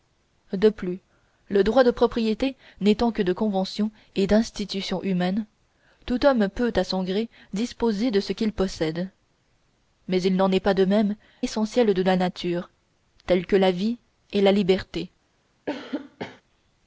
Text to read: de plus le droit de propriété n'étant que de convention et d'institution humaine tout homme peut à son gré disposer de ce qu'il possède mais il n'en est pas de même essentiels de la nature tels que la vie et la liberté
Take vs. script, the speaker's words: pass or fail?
pass